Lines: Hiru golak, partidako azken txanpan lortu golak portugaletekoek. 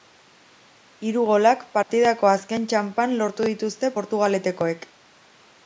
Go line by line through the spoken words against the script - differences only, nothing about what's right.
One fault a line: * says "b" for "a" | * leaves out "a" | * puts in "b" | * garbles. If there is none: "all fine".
* says "dituzte" for "golak"